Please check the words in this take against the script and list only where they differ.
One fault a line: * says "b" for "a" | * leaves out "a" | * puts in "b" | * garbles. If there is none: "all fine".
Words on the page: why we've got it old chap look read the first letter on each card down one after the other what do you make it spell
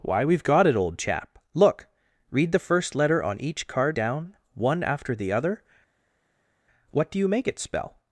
all fine